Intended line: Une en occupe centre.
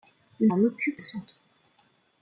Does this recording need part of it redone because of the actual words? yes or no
no